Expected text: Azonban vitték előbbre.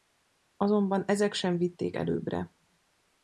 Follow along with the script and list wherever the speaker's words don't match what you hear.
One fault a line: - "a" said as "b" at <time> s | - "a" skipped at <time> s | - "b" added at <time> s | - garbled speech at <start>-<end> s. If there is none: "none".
- "ezek sem" added at 1.1 s